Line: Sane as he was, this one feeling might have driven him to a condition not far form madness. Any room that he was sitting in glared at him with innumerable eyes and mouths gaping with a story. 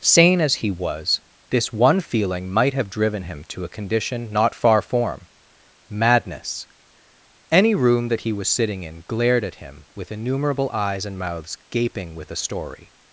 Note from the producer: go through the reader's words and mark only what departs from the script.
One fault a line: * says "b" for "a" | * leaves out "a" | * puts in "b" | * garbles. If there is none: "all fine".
all fine